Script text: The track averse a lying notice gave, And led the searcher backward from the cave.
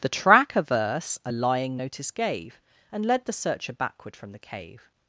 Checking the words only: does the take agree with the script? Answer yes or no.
yes